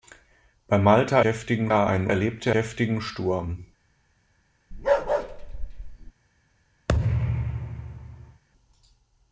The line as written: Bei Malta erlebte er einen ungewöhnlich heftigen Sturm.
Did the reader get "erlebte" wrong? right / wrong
wrong